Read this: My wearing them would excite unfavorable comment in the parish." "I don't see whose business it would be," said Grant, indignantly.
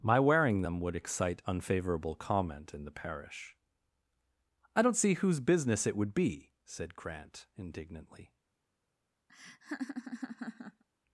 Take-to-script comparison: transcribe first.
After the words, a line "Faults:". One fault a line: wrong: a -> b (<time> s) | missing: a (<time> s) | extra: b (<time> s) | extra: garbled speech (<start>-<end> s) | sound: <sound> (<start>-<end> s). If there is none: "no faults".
My wearing them would excite unfavorable comment in the parish." "I don't see whose business it would be," said Grant, indignantly.
Faults:
sound: laugh (9.3-10.8 s)